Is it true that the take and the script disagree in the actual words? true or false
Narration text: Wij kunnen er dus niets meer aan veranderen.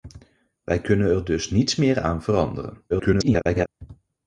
true